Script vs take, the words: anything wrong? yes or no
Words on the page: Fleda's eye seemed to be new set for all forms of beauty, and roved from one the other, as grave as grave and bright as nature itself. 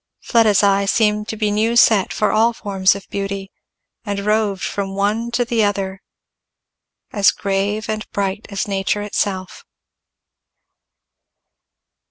yes